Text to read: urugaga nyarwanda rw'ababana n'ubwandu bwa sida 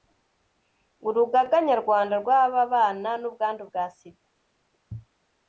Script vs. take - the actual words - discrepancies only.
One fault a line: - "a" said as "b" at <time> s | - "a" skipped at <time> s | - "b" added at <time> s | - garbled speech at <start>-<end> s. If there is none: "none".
none